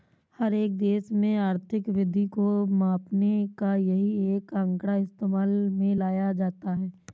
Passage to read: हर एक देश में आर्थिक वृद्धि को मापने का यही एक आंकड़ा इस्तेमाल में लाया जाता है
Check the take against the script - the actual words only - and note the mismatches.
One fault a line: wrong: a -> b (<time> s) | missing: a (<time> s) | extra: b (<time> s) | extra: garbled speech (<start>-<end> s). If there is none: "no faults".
no faults